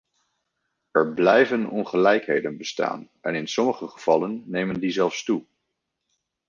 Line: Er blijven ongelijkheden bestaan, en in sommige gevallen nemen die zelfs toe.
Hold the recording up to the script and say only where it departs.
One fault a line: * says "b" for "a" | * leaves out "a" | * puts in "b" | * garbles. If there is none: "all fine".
all fine